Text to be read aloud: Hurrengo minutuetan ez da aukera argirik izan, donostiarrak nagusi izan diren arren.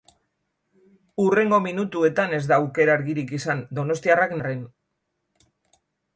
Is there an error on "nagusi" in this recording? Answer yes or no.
yes